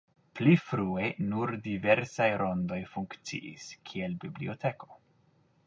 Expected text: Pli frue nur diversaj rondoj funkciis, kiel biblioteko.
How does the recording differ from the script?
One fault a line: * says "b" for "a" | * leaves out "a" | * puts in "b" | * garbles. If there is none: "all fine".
all fine